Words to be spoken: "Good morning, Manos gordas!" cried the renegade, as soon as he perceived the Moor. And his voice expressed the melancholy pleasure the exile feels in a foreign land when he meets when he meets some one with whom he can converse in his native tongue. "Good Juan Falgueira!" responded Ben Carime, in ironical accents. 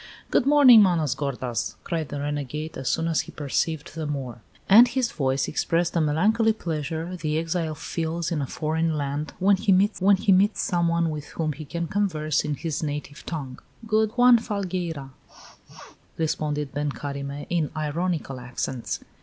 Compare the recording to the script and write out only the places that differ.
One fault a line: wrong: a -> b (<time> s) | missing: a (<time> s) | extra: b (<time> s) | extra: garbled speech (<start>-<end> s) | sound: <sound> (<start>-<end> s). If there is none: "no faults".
sound: sneeze (15.3-16.0 s)